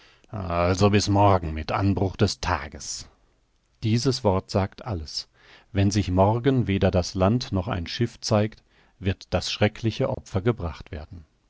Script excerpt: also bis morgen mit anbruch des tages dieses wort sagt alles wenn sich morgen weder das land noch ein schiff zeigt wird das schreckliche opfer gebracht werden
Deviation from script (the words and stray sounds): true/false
true